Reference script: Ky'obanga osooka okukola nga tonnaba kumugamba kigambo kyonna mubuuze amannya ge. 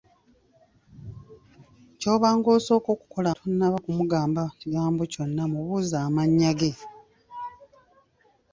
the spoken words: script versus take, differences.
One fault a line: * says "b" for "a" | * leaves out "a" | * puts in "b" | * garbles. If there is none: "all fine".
* leaves out "nga"